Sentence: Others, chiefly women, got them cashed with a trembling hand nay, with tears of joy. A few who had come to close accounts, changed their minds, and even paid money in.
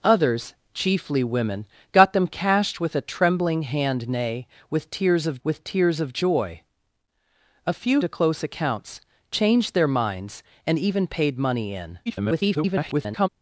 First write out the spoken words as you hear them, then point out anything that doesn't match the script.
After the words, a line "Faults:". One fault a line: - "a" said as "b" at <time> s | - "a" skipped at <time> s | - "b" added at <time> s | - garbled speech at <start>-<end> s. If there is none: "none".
Others, chiefly women, got them cashed with a trembling hand nay, with tears of with tears of joy. A few to close accounts, changed their minds, and even paid money in. [garbled]
Faults:
- "with tears of" added at 5.4 s
- "who had come" skipped at 8.0 s
- garbled speech at 12.1-13.3 s